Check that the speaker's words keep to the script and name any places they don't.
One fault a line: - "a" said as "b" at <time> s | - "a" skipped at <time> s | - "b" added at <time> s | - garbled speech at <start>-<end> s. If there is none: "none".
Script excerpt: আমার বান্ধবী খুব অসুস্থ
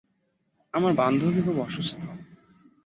none